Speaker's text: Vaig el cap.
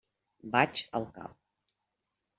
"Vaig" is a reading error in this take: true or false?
false